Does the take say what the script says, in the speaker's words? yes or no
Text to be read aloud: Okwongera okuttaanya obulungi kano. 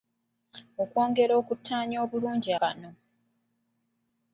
yes